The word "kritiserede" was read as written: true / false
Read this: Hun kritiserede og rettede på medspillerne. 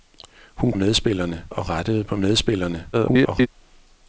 false